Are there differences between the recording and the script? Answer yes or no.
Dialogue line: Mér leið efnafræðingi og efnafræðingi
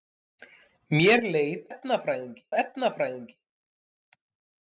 no